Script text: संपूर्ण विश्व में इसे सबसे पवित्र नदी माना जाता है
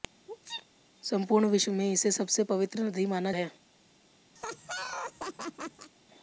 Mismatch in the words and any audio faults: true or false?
true